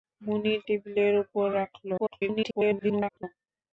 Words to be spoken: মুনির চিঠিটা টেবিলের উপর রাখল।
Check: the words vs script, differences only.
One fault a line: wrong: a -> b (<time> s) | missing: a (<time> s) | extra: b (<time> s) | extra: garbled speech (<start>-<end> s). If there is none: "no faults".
missing: চিঠিটা (0.6 s)
extra: garbled speech (2.0-3.2 s)